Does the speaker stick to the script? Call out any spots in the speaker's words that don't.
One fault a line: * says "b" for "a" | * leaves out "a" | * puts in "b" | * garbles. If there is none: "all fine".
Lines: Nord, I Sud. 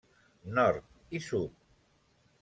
all fine